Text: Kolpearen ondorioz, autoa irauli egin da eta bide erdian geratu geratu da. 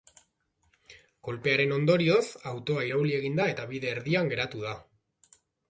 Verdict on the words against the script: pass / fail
fail